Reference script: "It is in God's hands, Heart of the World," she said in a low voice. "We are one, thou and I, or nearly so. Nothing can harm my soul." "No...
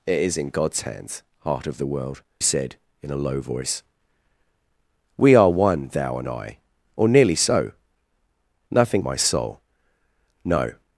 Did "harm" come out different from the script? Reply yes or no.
yes